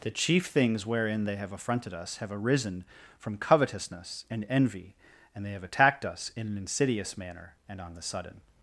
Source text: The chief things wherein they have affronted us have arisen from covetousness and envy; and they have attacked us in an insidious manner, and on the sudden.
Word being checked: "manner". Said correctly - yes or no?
yes